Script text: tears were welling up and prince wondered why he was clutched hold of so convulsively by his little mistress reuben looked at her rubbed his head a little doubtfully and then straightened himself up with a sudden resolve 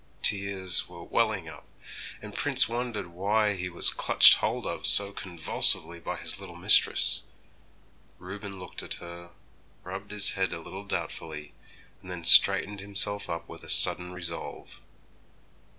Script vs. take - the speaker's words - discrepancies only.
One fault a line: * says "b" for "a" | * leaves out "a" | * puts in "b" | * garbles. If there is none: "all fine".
all fine